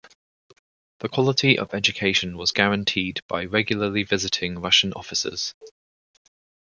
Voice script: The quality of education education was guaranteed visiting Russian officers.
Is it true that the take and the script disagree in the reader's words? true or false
true